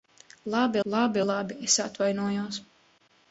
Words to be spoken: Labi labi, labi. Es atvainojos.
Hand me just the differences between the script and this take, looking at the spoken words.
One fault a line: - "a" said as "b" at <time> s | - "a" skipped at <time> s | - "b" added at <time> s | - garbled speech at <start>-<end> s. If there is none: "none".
none